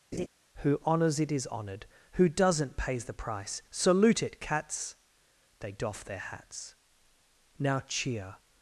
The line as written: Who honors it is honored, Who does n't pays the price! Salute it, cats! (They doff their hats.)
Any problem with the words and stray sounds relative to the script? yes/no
yes